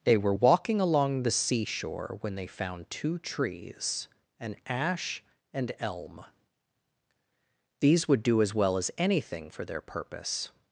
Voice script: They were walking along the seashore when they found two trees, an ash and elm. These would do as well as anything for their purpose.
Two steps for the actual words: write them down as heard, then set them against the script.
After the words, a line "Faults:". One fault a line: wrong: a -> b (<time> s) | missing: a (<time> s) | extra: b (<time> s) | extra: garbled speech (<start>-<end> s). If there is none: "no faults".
They were walking along the seashore when they found two trees, an ash and elm. These would do as well as anything for their purpose.
Faults:
no faults